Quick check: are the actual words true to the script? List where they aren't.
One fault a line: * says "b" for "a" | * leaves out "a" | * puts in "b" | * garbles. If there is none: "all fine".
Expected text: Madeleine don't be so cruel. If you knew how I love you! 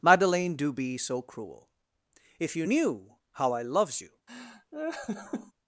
* says "do" for "don't"
* says "loves" for "love"